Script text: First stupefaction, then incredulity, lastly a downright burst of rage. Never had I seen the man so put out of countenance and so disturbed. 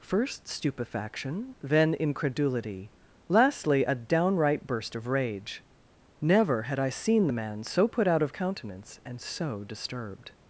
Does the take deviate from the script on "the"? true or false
false